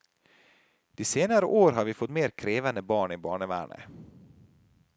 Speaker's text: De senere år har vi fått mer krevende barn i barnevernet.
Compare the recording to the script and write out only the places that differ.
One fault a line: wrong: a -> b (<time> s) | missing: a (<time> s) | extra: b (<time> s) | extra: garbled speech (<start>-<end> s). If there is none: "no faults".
no faults